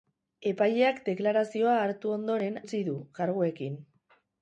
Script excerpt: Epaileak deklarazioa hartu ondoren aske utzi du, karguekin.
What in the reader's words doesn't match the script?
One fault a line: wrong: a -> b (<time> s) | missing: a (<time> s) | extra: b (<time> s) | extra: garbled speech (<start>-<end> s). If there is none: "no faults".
missing: aske (2.6 s)